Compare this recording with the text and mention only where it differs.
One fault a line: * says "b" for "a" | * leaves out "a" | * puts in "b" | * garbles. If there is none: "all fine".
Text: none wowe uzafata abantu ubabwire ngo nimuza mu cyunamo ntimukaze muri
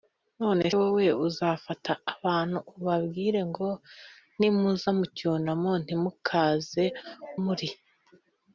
all fine